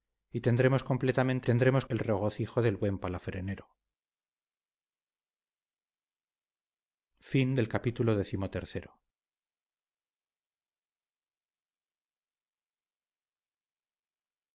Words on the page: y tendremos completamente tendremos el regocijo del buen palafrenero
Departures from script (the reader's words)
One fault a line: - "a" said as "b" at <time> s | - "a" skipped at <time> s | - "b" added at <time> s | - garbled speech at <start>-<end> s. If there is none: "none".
none